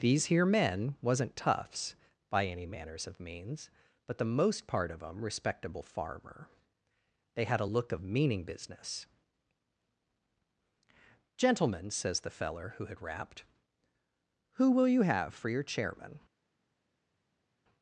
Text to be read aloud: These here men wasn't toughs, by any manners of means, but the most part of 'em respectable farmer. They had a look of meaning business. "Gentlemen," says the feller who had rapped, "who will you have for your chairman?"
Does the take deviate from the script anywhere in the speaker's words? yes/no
no